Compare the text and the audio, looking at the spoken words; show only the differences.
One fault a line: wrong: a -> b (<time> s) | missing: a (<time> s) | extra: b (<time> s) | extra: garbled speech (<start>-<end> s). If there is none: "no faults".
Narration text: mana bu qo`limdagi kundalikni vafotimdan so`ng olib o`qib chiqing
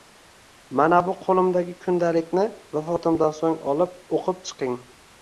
no faults